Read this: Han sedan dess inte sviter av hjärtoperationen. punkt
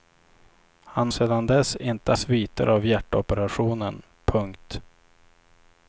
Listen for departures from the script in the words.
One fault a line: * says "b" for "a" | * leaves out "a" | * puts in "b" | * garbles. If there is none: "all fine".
all fine